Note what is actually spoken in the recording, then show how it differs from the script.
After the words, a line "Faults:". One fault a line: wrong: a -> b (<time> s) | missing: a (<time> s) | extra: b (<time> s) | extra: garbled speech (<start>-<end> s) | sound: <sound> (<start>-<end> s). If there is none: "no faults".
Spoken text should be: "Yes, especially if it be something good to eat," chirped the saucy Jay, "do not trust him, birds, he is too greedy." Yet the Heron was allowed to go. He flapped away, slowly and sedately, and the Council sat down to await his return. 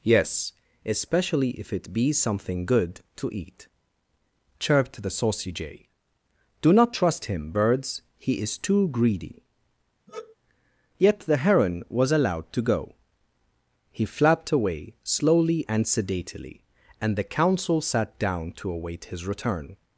"Yes, especially if it be something good to eat," chirped the saucy Jay, "do not trust him, birds, he is too greedy." Yet the Heron was allowed to go. He flapped away, slowly and sedately, and the Council sat down to await his return.
Faults:
sound: sigh (10.1-10.4 s)